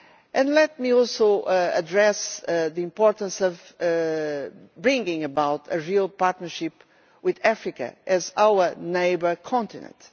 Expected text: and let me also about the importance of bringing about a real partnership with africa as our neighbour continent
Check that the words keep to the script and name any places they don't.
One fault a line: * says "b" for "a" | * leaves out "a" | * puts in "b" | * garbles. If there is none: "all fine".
* says "address" for "about"